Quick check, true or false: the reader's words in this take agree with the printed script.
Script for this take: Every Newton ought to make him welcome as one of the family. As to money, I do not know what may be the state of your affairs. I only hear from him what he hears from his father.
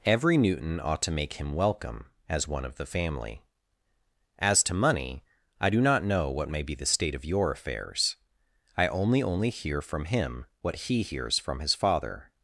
false